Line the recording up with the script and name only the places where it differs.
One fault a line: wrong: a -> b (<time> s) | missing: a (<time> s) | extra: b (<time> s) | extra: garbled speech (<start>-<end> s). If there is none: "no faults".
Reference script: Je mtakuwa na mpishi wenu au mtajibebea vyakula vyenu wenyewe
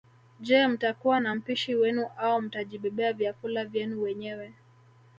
no faults